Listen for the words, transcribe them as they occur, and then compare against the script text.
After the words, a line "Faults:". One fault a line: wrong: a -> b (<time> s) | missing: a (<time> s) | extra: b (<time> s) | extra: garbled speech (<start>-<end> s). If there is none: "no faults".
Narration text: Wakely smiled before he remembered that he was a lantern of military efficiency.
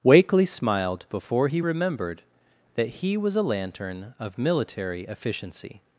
Wakely smiled before he remembered that he was a lantern of military efficiency.
Faults:
no faults